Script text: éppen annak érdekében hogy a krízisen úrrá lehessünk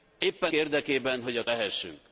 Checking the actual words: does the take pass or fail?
fail